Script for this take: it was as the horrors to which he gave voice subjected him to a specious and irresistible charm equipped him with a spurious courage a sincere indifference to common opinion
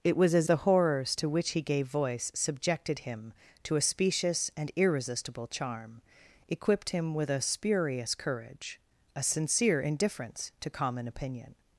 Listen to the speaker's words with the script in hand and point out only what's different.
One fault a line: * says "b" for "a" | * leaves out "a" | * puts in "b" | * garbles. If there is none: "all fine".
all fine